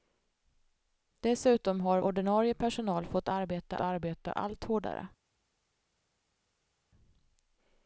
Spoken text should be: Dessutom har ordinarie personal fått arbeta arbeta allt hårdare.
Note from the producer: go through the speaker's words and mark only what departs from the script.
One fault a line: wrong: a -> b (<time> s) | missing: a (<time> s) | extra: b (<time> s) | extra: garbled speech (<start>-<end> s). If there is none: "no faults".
no faults